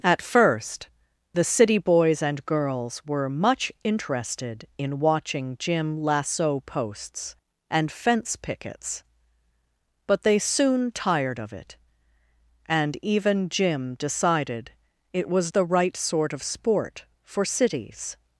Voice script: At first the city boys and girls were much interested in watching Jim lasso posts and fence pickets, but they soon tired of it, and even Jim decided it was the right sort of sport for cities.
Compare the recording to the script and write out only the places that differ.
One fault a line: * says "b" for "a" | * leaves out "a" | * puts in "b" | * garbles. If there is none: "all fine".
all fine